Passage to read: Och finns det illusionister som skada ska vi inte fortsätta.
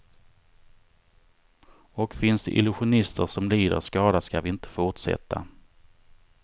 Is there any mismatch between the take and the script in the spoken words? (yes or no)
yes